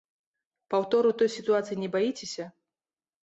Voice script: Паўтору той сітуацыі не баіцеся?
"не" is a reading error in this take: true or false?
false